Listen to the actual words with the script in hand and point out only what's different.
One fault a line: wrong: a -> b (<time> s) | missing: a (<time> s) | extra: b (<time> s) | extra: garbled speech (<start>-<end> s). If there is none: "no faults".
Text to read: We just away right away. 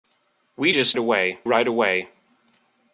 no faults